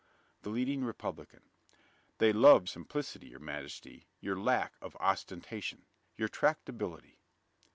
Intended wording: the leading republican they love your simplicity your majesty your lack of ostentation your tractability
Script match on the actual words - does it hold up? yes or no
no